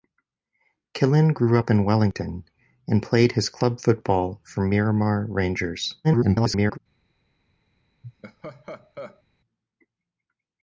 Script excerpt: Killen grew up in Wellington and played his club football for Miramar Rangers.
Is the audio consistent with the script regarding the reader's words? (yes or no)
no